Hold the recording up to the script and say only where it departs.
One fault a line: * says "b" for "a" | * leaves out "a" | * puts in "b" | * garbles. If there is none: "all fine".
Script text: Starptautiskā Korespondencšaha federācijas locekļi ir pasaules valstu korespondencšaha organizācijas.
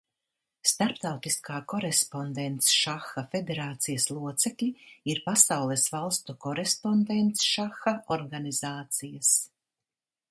all fine